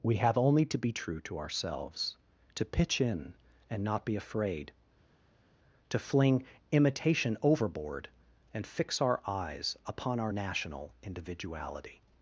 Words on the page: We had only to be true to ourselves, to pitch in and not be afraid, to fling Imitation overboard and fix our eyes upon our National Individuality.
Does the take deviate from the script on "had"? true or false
true